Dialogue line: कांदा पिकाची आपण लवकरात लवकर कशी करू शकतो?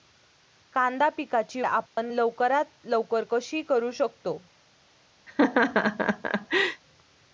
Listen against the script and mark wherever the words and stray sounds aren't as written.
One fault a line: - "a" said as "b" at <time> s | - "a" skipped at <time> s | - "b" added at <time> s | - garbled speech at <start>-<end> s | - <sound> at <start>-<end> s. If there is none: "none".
- dropout at 1.9-2.0 s
- laugh at 5.3-6.8 s